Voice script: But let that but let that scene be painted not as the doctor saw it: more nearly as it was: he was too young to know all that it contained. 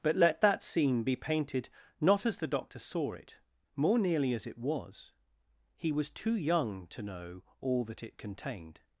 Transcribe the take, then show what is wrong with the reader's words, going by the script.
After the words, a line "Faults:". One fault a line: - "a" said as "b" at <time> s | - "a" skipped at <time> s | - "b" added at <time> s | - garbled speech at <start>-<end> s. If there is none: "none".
But let that scene be painted not as the doctor saw it: more nearly as it was: he was too young to know all that it contained.
Faults:
- "but let that" skipped at 0.6 s